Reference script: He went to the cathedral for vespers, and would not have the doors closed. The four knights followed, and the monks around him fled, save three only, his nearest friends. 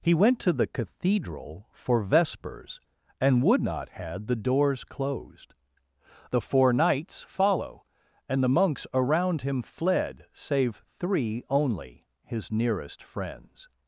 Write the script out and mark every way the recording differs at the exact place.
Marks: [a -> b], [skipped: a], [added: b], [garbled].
He went to the cathedral for vespers, and would not [have -> had] the doors closed. The four knights [followed, -> follow] and the monks around him fled, save three only, his nearest friends.